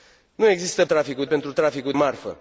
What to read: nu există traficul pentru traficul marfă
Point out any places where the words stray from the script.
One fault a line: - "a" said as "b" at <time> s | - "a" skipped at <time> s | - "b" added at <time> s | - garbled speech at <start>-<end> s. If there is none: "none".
none